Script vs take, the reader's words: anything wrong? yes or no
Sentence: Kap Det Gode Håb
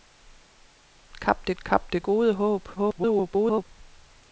yes